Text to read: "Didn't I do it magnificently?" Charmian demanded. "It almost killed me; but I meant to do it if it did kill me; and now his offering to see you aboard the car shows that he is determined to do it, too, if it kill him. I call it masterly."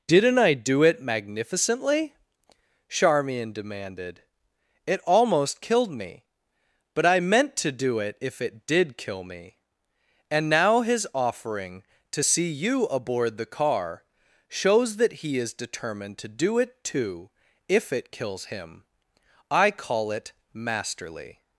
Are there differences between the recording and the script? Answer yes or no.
yes